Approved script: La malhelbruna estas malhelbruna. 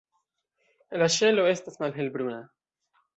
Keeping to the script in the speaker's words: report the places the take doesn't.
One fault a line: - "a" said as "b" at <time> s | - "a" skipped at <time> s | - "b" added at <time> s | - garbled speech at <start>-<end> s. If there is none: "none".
- "malhelbruna" said as "ŝelo" at 1.1 s